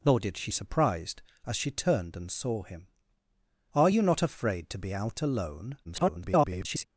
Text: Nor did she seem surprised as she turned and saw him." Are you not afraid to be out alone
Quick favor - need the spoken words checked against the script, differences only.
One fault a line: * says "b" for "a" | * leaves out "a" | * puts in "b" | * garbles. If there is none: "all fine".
* leaves out "seem"
* garbles